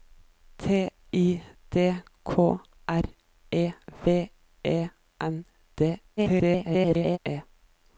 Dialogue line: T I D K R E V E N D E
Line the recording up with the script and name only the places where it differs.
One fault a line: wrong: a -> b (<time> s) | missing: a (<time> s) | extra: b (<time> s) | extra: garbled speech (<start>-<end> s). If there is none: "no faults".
extra: garbled speech (6.2-7.2 s)